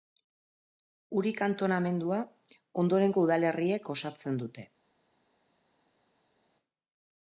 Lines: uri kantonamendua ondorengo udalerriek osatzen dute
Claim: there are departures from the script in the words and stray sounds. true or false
false